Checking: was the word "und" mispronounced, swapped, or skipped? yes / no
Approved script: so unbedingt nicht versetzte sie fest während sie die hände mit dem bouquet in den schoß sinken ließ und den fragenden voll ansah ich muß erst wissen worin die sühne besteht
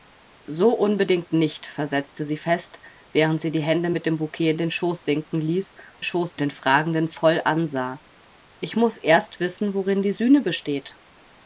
yes